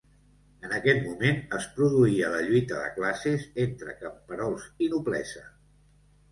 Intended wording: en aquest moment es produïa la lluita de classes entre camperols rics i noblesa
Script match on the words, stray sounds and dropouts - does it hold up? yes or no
no